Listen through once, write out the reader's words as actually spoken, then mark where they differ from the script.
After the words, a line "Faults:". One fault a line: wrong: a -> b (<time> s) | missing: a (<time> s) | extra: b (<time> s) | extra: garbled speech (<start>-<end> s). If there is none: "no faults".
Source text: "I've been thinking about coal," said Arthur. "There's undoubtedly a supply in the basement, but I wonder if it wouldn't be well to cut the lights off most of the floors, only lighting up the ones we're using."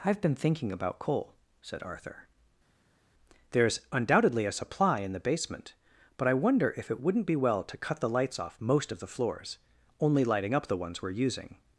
"I've been thinking about coal," said Arthur. "There's undoubtedly a supply in the basement, but I wonder if it wouldn't be well to cut the lights off most of the floors, only lighting up the ones we're using."
Faults:
no faults